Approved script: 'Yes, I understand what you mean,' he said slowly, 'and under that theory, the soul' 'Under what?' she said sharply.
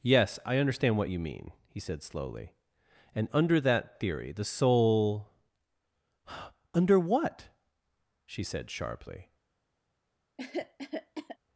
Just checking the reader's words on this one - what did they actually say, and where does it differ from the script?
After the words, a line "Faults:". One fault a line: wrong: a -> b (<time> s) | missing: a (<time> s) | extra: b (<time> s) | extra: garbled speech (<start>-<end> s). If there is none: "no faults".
'Yes, I understand what you mean,' he said slowly, 'and under that theory, the soul' 'Under what?' she said sharply.
Faults:
no faults